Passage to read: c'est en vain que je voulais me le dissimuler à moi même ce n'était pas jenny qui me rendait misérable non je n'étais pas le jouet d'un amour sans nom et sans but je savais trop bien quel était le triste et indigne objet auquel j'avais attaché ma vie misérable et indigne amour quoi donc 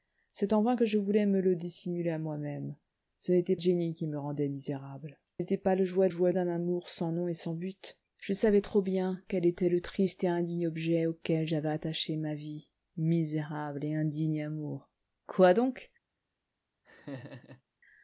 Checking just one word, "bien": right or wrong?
right